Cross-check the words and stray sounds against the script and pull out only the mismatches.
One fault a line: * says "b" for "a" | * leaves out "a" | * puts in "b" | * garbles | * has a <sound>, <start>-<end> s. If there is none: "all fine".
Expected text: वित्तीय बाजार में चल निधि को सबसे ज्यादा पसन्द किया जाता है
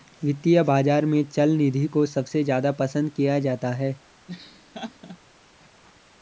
* has a laugh, 4.3-5.2 s